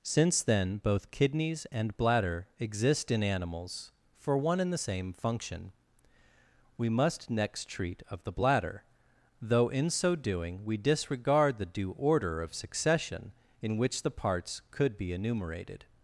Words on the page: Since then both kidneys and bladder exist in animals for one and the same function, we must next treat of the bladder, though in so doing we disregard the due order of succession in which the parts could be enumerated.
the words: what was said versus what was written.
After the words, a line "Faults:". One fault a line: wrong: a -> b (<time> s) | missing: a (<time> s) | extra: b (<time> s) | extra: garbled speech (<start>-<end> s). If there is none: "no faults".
Since then both kidneys and bladder exist in animals for one and the same function, we must next treat of the bladder, though in so doing we disregard the due order of succession in which the parts could be enumerated.
Faults:
no faults